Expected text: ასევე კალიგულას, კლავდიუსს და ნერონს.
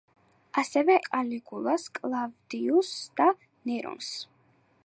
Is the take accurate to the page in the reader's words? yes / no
yes